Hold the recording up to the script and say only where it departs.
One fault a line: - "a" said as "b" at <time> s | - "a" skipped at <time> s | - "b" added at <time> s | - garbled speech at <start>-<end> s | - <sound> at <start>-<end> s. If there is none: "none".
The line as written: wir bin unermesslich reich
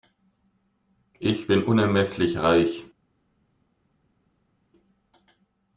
- "wir" said as "ich" at 1.2 s